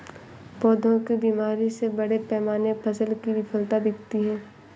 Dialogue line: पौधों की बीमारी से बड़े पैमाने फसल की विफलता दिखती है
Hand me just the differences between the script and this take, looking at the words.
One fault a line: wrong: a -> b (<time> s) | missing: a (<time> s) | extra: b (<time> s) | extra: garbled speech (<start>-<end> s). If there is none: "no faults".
no faults